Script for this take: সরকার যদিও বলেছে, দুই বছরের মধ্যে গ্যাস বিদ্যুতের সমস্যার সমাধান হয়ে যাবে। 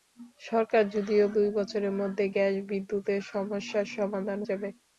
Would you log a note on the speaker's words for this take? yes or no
yes